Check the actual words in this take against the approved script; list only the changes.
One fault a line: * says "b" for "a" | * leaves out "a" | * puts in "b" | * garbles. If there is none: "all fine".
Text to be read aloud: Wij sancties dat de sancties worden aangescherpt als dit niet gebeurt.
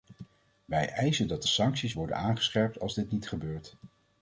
* says "eisen" for "sancties"